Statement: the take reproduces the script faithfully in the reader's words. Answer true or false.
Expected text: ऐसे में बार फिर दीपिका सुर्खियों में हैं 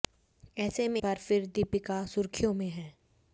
true